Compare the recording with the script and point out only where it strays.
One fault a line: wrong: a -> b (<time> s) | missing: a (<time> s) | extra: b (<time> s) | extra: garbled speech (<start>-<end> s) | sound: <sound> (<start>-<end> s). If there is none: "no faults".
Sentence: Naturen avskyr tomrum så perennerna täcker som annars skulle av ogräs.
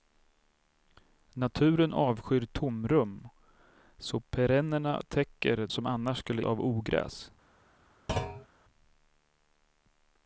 sound: thud (8.1-8.5 s)